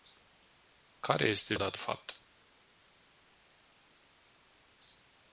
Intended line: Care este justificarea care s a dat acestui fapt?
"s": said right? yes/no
no